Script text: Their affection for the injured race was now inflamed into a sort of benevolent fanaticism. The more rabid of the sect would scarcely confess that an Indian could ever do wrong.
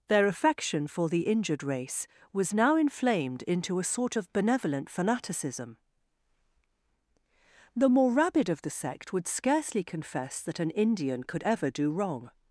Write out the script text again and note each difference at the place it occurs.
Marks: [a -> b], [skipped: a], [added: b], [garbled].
Their affection for the injured race was now inflamed into a sort of benevolent fanaticism. The more rabid of the sect would scarcely confess that an Indian could ever do wrong.